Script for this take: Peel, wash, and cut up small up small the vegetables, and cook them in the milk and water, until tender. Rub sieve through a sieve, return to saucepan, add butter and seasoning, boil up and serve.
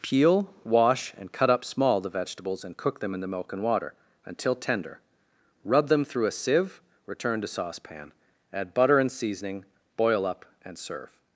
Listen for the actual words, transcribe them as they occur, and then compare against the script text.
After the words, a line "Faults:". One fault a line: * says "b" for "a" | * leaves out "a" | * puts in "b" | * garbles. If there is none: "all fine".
Peel, wash, and cut up small the vegetables, and cook them in the milk and water, until tender. Rub them through a sieve, return to saucepan, add butter and seasoning, boil up and serve.
Faults:
* leaves out "up small"
* says "them" for "sieve"